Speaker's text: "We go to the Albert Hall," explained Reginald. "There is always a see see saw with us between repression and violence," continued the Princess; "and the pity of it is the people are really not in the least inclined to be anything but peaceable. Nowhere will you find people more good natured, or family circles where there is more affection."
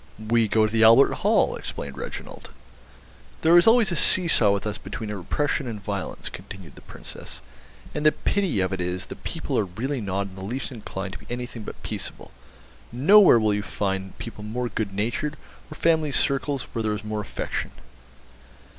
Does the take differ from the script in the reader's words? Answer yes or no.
yes